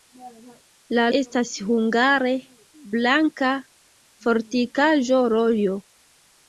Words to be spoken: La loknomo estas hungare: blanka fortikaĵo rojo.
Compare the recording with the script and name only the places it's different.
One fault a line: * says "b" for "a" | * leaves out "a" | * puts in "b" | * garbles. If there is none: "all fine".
* leaves out "loknomo"